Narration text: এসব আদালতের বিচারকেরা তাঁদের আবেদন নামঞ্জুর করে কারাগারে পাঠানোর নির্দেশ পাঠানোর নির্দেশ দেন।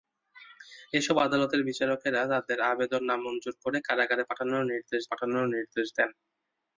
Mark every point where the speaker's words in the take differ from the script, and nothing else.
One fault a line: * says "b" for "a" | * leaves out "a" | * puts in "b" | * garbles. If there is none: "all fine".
all fine